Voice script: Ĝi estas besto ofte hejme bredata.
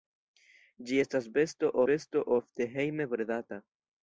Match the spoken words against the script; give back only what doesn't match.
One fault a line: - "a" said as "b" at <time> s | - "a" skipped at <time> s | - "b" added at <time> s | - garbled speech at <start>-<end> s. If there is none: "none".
- "besto" added at 1.9 s